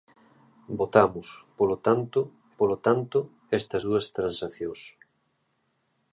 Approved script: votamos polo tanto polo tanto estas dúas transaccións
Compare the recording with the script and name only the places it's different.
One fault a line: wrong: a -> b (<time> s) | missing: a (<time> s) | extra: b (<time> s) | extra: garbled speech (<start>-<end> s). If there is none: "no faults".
no faults